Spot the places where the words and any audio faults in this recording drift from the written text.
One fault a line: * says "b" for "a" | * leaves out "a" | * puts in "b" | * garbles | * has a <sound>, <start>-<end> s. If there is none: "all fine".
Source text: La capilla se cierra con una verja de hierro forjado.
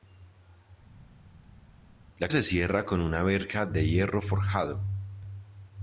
* leaves out "capilla"